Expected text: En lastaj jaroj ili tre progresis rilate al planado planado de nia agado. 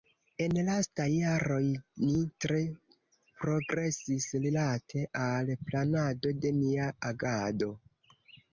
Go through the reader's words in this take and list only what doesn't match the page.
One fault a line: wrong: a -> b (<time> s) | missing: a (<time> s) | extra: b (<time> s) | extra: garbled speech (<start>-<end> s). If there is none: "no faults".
wrong: ili -> ni (2.0 s)
missing: planado (6.4 s)